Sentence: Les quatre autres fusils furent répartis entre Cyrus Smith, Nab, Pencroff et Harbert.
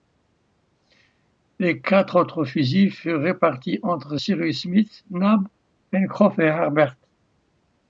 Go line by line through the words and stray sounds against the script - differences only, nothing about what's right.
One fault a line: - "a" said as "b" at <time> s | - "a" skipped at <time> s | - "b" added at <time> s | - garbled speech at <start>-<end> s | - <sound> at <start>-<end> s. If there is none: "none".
none